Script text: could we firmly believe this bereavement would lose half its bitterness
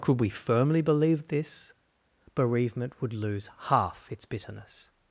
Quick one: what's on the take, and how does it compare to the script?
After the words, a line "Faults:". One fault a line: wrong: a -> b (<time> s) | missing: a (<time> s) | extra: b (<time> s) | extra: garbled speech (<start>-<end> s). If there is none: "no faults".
could we firmly believe this bereavement would lose half its bitterness
Faults:
no faults